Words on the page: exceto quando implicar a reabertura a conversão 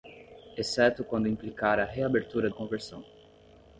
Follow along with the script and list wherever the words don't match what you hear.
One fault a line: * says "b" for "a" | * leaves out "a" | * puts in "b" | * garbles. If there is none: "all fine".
all fine